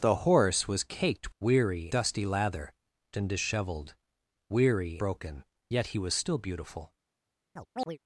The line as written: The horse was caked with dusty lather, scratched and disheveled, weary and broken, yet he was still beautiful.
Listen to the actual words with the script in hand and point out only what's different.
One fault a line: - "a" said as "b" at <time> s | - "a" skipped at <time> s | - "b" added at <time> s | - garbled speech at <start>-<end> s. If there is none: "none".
- "with" said as "weary" at 1.4 s
- "scratched" skipped at 2.7 s
- "and" skipped at 5.0 s